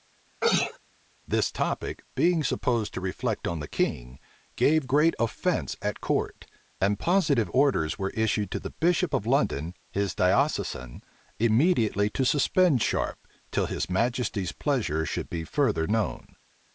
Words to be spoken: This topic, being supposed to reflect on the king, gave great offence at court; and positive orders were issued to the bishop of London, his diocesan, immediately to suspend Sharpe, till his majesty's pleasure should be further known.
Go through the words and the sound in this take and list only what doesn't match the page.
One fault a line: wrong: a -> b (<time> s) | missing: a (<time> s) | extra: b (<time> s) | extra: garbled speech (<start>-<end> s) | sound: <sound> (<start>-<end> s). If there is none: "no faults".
sound: sneeze (0.4-0.8 s)